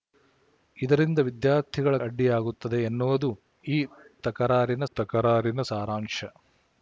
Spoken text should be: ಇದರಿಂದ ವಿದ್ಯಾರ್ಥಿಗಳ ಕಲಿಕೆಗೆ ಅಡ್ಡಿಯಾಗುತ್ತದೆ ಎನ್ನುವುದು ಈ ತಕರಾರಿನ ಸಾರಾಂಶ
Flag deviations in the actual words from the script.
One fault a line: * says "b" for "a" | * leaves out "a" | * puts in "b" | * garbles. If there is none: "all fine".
* leaves out "ಕಲಿಕೆಗೆ"
* puts in "ತಕರಾರಿನ"